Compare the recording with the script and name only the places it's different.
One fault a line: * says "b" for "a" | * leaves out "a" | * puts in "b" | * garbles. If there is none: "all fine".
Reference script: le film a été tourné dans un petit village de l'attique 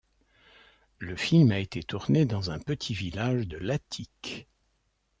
all fine